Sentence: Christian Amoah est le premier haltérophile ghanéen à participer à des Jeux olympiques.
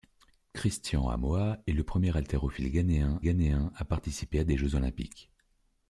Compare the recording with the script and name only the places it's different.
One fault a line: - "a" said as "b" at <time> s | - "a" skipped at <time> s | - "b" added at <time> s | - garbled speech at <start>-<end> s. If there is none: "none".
- "ghanéen" added at 3.2 s